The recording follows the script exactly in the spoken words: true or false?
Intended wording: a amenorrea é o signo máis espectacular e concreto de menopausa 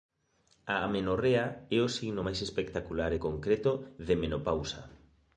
true